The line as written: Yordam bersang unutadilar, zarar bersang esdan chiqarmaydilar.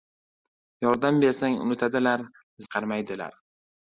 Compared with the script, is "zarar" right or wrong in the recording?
wrong